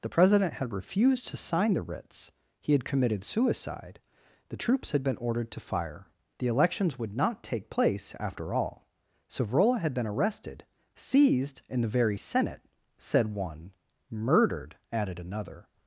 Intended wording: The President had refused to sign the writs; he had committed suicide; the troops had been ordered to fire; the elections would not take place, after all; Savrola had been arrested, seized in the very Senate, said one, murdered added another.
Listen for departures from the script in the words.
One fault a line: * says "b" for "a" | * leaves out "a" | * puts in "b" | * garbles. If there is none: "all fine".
all fine